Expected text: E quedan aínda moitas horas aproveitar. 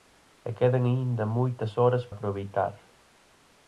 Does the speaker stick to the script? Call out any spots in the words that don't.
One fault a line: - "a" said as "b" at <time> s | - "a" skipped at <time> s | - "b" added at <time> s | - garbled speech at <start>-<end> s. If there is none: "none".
none